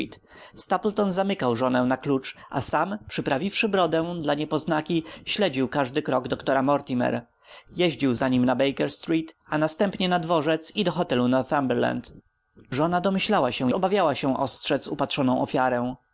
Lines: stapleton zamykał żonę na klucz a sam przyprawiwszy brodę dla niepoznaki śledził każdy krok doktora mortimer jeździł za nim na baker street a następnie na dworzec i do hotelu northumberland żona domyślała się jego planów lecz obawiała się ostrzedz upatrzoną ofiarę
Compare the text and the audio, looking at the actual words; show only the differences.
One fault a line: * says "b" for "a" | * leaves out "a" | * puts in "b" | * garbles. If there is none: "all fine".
* leaves out "jego planów lecz"